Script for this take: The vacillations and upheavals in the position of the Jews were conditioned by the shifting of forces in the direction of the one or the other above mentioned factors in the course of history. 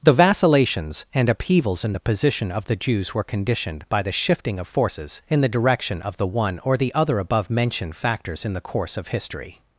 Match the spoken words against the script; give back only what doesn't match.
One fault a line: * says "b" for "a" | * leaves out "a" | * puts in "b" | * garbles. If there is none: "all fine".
all fine